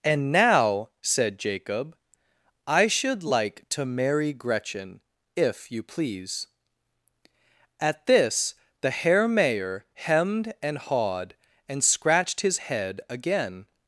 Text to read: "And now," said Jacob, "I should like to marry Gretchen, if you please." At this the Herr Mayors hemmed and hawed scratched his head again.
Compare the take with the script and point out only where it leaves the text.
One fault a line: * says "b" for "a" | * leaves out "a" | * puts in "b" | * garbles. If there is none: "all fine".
* says "Mayor" for "Mayors"
* puts in "and"